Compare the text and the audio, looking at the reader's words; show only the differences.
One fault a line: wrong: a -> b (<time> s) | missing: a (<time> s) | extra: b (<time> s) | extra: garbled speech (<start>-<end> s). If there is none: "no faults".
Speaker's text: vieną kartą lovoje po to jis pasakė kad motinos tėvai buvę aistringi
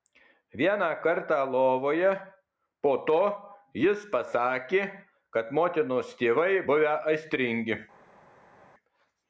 no faults